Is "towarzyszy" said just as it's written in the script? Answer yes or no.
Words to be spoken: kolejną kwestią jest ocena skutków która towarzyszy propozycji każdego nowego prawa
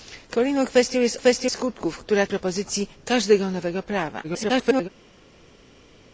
no